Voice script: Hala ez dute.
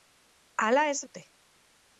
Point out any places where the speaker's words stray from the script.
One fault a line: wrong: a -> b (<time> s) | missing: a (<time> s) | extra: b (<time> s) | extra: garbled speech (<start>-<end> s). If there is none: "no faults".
no faults